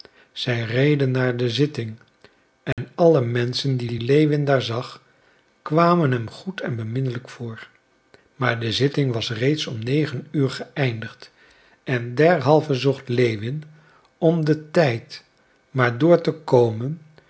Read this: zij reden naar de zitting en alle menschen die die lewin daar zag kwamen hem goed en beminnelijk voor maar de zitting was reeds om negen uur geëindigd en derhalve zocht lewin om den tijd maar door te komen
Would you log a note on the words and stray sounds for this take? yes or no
yes